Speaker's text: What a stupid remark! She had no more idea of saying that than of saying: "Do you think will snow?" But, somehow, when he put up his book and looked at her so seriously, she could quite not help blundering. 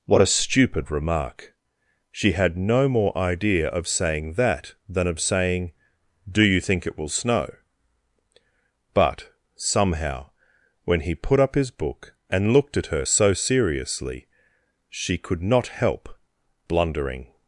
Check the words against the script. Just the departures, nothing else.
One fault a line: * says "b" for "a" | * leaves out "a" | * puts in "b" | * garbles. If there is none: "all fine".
* puts in "it"
* leaves out "quite"